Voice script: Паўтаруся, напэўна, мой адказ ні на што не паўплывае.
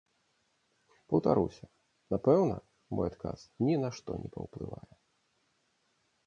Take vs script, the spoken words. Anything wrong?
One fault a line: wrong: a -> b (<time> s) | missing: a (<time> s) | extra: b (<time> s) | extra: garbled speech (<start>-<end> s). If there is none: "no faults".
no faults